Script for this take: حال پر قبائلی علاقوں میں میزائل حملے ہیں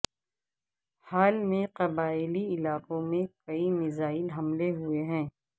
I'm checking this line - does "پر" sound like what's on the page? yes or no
no